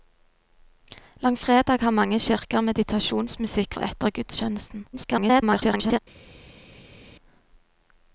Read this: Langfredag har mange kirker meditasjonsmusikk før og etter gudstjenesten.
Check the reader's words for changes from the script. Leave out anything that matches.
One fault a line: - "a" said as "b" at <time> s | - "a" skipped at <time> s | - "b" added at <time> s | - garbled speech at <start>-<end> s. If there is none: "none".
- "før" skipped at 3.7 s
- garbled speech at 4.9-6.0 s